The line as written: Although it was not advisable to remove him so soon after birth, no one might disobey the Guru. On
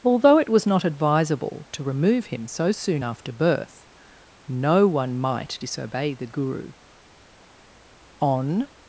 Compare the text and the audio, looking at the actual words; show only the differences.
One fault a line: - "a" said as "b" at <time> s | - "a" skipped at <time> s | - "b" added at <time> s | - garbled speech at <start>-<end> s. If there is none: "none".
none